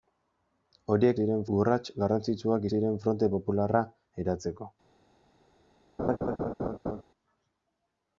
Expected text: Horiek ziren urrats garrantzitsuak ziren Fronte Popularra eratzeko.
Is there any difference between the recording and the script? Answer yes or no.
no